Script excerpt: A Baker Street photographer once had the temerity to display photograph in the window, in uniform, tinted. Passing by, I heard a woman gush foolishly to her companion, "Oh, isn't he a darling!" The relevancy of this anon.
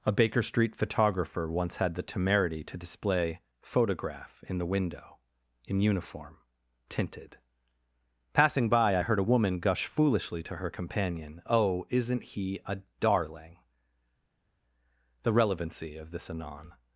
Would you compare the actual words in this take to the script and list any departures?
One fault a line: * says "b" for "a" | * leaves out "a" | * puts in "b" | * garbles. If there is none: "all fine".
all fine